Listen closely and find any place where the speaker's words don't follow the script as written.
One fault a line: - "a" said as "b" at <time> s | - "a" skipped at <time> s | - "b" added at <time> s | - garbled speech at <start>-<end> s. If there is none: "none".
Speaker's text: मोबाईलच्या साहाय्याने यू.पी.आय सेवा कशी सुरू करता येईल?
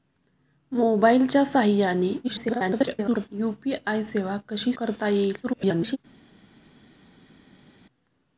- garbled speech at 2.2-3.3 s
- "सुरू" skipped at 4.7 s
- garbled speech at 5.4-6.0 s